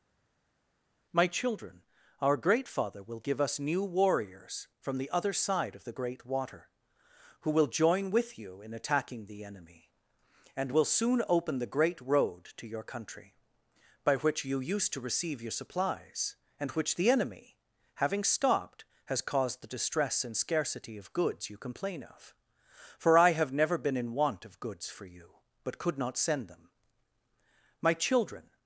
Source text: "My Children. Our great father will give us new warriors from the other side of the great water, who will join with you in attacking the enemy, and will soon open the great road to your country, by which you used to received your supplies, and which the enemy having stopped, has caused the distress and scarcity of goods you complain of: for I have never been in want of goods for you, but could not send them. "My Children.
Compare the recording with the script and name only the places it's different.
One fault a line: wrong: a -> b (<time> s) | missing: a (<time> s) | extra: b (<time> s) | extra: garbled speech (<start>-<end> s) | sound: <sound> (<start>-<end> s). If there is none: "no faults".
wrong: received -> receive (15.0 s)